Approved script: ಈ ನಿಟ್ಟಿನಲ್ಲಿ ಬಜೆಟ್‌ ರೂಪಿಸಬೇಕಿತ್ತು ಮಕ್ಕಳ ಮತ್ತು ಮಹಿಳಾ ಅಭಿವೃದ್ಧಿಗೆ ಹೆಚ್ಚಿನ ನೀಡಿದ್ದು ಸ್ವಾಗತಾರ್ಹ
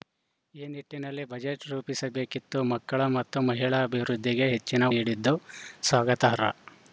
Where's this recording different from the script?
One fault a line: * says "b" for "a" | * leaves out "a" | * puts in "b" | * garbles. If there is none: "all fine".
all fine